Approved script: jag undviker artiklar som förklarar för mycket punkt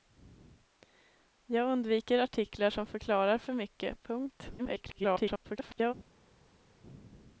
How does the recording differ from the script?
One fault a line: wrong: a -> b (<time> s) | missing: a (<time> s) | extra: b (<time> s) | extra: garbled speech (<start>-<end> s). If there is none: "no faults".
extra: garbled speech (4.6-5.9 s)